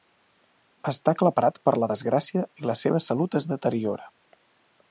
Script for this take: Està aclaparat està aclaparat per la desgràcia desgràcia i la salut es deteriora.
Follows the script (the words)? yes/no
no